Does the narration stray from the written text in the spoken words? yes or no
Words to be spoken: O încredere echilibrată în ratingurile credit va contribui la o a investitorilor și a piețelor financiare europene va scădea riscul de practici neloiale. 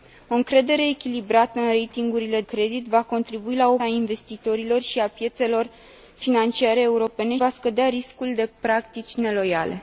no